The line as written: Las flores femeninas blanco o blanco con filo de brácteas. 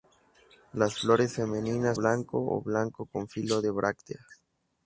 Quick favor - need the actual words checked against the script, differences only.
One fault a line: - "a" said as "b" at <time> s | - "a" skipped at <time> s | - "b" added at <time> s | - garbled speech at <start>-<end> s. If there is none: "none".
none